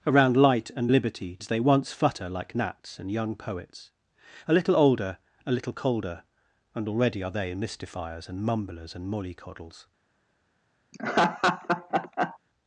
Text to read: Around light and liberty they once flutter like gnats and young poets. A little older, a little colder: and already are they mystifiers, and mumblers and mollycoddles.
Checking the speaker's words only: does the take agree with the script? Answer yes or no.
yes